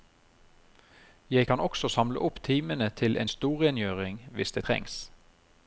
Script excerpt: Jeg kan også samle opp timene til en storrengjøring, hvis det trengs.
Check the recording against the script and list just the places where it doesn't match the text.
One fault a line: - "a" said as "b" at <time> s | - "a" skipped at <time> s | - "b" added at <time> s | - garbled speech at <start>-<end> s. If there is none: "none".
none